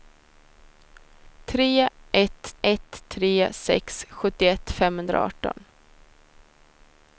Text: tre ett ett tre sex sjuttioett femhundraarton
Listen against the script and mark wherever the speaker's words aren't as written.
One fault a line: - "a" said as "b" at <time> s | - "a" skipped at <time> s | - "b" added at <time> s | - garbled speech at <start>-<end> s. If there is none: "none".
none